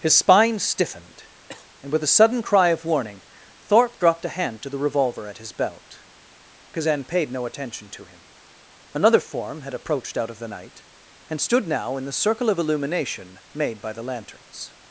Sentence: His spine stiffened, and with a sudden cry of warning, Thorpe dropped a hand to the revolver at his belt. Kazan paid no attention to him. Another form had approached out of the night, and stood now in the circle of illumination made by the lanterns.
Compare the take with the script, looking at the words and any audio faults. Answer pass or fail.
fail